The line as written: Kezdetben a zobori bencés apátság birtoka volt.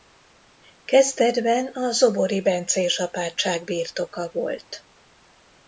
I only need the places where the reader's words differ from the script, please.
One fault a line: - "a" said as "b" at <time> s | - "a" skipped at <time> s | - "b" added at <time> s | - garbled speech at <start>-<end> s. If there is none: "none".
none